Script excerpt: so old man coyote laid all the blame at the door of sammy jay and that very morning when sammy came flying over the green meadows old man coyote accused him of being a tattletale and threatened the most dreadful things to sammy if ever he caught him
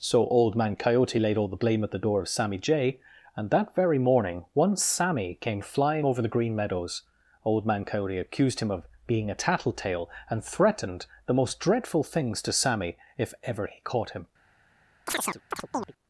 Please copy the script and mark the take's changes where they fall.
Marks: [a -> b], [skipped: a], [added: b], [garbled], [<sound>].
so old man coyote laid all the blame at the door of sammy jay and that very morning [when -> one] sammy came flying over the green meadows old man coyote accused him of being a tattletale and threatened the most dreadful things to sammy if ever he caught him [chirp]